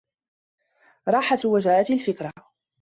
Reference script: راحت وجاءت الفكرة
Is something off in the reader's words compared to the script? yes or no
no